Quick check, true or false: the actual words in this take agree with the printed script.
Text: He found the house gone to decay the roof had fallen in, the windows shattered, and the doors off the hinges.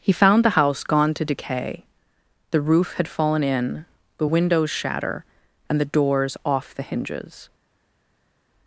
false